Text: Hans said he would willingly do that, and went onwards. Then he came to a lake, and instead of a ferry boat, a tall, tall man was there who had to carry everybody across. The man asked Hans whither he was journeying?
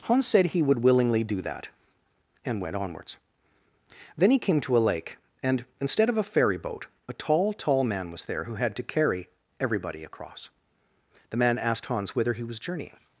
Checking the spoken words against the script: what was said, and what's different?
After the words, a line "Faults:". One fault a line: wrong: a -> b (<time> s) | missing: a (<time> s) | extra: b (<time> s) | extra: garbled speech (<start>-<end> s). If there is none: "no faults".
Hans said he would willingly do that, and went onwards. Then he came to a lake, and instead of a ferry boat, a tall, tall man was there who had to carry everybody across. The man asked Hans whither he was journeying?
Faults:
no faults